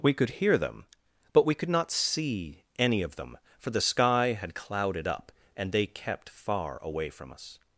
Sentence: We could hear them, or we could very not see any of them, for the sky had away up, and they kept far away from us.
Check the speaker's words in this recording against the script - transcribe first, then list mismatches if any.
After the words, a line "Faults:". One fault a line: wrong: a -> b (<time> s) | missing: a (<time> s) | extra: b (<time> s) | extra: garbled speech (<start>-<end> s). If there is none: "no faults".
We could hear them, but we could not see any of them, for the sky had clouded up, and they kept far away from us.
Faults:
wrong: or -> but (1.3 s)
missing: very (1.7 s)
wrong: away -> clouded (4.5 s)